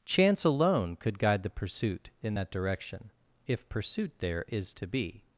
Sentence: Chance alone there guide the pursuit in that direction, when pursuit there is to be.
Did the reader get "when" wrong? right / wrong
wrong